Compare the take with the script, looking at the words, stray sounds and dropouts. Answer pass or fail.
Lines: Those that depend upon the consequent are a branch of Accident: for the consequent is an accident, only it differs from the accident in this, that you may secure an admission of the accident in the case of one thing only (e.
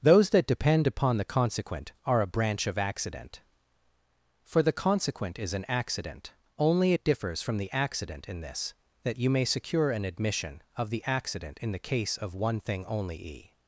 pass